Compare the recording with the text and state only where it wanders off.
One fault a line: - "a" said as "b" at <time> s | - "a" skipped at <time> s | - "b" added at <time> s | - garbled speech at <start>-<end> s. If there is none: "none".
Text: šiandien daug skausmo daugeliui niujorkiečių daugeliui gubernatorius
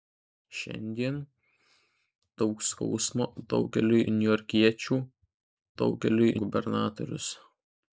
none